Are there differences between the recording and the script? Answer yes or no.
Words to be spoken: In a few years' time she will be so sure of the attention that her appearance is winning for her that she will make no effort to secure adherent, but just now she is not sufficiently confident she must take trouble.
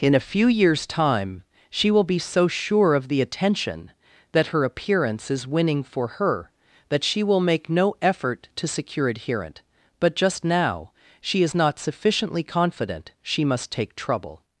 no